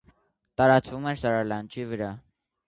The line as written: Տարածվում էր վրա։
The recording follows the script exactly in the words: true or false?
false